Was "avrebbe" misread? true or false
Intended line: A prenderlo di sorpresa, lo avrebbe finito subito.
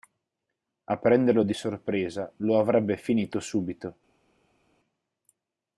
false